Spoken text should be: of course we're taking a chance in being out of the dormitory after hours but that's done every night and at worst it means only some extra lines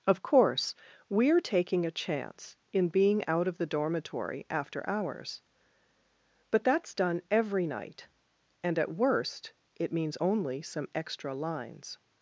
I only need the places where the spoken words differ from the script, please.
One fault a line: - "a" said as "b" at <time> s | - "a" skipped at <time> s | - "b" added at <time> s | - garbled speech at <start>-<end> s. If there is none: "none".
none